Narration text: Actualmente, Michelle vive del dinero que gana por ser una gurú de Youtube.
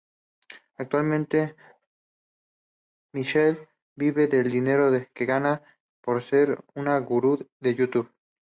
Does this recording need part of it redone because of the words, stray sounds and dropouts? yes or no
no